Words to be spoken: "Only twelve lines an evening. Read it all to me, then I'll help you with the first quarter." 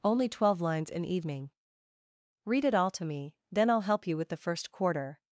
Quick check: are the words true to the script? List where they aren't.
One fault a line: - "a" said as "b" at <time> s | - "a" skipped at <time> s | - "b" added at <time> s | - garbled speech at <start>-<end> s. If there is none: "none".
none